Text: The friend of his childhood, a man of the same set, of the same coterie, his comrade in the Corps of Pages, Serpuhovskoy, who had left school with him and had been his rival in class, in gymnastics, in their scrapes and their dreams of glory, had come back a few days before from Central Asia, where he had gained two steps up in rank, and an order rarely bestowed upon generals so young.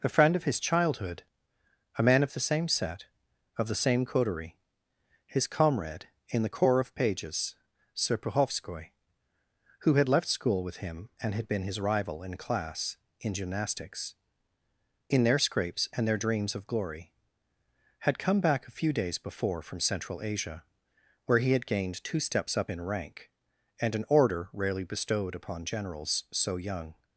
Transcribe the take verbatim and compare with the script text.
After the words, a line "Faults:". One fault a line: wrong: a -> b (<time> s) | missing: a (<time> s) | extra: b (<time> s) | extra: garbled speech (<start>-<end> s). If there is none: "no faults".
A friend of his childhood, a man of the same set, of the same coterie, his comrade in the Corps of Pages, Serpuhovskoy, who had left school with him and had been his rival in class, in gymnastics, in their scrapes and their dreams of glory, had come back a few days before from Central Asia, where he had gained two steps up in rank, and an order rarely bestowed upon generals so young.
Faults:
wrong: The -> A (0.0 s)